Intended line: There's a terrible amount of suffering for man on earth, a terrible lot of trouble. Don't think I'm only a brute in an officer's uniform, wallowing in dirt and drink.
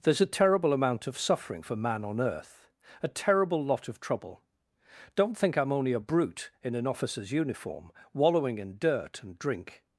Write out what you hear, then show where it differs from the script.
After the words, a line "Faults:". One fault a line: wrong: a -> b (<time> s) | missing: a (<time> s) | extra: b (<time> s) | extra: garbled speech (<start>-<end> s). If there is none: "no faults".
There's a terrible amount of suffering for man on earth, a terrible lot of trouble. Don't think I'm only a brute in an officer's uniform, wallowing in dirt and drink.
Faults:
no faults